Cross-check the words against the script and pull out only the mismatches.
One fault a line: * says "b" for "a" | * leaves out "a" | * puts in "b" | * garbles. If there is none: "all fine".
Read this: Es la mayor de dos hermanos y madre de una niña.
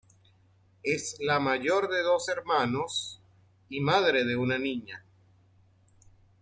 all fine